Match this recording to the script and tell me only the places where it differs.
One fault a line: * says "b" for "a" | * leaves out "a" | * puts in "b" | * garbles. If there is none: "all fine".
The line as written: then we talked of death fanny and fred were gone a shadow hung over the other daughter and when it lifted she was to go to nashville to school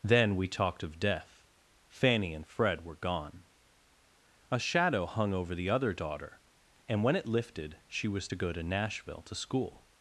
all fine